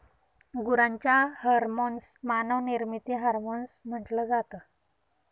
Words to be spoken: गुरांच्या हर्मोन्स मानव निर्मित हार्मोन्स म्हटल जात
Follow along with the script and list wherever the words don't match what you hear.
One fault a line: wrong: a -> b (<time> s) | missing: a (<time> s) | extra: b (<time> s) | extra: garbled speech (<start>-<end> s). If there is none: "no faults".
no faults